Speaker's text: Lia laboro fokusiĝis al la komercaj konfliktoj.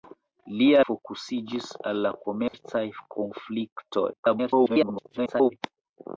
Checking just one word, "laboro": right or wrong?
wrong